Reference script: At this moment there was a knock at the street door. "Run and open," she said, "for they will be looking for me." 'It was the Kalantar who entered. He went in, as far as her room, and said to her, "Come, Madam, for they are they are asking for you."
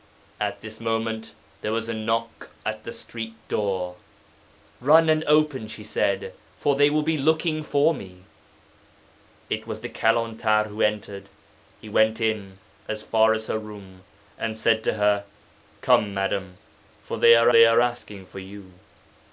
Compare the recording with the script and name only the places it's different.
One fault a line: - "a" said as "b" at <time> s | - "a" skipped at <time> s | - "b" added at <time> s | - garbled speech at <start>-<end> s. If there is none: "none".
none